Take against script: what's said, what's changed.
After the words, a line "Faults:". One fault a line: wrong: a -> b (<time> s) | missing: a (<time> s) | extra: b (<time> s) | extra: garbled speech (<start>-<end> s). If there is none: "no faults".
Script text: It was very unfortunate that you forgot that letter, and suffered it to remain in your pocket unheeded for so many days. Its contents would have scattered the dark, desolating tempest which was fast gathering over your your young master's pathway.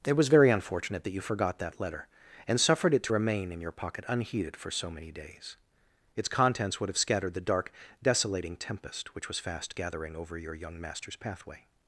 It was very unfortunate that you forgot that letter, and suffered it to remain in your pocket unheeded for so many days. Its contents would have scattered the dark, desolating tempest which was fast gathering over your young master's pathway.
Faults:
missing: your (10.5 s)